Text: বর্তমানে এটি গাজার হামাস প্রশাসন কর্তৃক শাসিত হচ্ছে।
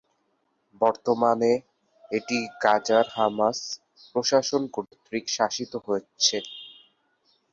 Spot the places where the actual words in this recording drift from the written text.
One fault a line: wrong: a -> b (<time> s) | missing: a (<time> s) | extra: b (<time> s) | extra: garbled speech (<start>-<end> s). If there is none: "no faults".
no faults